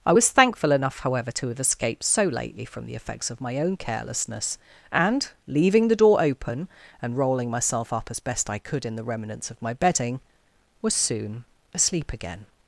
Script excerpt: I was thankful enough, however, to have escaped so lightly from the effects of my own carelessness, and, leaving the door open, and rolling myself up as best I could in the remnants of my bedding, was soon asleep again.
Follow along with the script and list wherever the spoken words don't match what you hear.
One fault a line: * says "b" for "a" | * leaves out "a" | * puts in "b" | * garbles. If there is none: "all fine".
* says "lately" for "lightly"